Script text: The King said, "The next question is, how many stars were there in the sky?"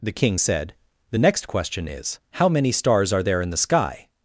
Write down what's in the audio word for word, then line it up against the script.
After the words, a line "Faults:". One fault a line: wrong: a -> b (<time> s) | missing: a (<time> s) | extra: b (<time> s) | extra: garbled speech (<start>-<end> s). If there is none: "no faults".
The King said, "The next question is, how many stars are there in the sky?"
Faults:
wrong: were -> are (3.1 s)